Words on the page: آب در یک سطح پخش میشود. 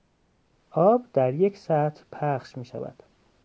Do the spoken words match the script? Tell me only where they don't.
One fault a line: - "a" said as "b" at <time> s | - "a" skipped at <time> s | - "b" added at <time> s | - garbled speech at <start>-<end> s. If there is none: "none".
none